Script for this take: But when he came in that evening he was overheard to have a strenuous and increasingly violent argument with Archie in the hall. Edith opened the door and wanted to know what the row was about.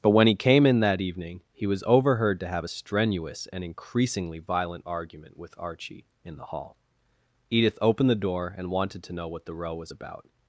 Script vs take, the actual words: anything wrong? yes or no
no